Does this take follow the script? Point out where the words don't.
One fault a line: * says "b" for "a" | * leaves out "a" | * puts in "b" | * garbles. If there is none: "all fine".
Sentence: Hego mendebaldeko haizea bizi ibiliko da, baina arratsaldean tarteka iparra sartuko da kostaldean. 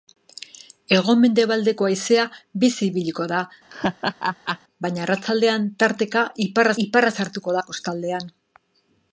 * puts in "iparra"